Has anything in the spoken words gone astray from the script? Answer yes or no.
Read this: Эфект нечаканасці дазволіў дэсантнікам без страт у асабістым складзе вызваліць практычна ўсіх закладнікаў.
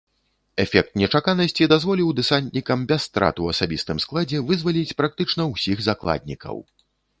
no